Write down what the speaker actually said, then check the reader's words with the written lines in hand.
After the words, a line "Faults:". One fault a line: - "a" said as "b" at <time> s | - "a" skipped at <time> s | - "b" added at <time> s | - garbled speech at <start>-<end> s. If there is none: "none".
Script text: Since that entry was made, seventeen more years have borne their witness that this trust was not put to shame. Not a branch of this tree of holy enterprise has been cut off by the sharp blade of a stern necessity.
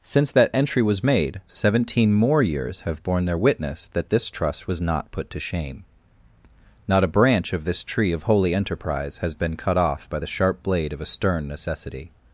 Since that entry was made, seventeen more years have borne their witness that this trust was not put to shame. Not a branch of this tree of holy enterprise has been cut off by the sharp blade of a stern necessity.
Faults:
none